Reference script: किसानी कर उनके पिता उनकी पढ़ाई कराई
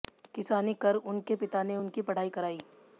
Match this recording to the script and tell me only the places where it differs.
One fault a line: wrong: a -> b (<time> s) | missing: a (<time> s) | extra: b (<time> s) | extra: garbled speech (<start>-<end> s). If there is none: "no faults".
extra: ने (1.6 s)